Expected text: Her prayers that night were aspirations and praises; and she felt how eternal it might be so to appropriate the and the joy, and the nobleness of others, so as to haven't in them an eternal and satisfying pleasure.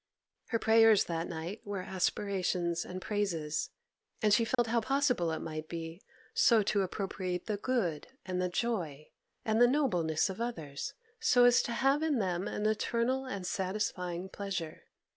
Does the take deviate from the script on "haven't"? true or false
true